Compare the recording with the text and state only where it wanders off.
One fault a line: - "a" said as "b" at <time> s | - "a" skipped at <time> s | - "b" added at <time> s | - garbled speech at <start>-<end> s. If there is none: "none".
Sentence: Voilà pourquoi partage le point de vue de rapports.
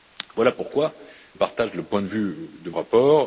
none